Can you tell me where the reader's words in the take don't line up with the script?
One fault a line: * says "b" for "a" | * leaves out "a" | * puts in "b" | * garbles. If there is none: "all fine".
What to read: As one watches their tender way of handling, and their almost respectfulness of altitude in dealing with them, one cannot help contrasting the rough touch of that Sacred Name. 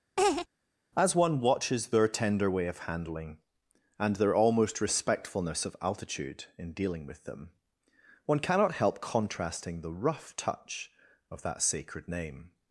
all fine